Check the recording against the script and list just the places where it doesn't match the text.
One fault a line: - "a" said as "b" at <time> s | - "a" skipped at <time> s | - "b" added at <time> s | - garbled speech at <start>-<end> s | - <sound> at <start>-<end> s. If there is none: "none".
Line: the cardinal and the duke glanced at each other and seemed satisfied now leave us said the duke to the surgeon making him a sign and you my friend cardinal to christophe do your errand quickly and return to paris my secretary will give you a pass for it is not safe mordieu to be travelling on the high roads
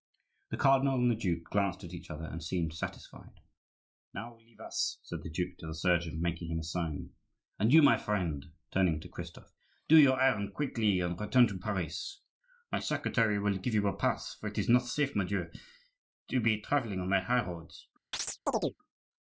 - "cardinal" said as "turning" at 8.7 s
- chirp at 18.1-18.8 s